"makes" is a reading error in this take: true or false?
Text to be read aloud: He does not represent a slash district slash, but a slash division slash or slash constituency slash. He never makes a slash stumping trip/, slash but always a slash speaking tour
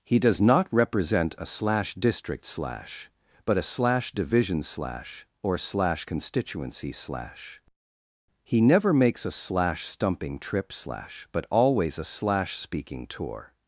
false